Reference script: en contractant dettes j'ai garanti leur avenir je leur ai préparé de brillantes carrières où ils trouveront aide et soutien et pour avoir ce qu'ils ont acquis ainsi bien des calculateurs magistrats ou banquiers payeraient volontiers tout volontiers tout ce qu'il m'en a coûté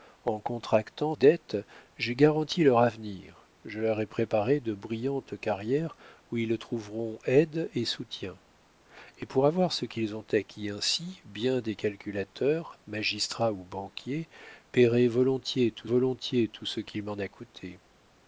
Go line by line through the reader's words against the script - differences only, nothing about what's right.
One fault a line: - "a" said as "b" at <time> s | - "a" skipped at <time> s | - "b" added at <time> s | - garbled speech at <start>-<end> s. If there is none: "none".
none